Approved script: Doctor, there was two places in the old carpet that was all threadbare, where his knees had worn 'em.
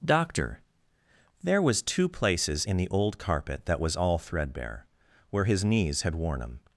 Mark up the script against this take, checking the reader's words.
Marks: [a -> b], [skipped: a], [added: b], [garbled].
Doctor, there was two places in the old carpet that was all threadbare, where his knees had worn 'em.